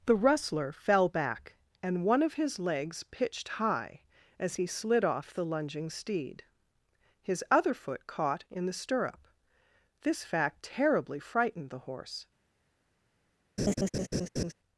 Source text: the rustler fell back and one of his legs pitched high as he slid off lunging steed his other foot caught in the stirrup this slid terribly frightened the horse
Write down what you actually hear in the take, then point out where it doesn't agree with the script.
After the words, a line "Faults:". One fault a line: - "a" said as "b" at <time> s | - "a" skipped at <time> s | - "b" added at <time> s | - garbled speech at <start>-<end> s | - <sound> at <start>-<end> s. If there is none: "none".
the rustler fell back and one of his legs pitched high as he slid off the lunging steed his other foot caught in the stirrup this fact terribly frightened the horse
Faults:
- "the" added at 5.3 s
- "slid" said as "fact" at 10.2 s
- laugh at 13.6-14.5 s